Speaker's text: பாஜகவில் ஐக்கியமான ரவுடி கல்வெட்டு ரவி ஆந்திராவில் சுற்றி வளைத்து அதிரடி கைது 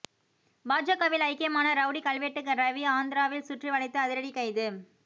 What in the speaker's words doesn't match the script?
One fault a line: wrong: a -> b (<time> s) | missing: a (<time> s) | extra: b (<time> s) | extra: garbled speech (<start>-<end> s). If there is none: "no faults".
no faults